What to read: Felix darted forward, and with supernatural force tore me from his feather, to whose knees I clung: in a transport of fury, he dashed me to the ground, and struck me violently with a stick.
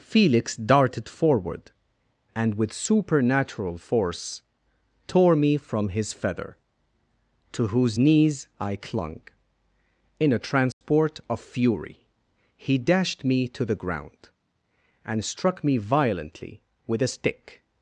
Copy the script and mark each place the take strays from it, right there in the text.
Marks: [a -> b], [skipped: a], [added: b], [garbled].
Felix darted forward, and with supernatural force tore me from his feather, to whose knees I clung: in a transport of fury, he dashed me to the ground, and struck me violently with a stick.